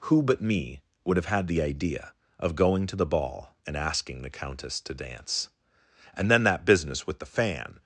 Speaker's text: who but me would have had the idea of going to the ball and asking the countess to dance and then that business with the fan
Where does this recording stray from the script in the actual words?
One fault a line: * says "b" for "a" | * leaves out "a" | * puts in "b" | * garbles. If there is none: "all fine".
all fine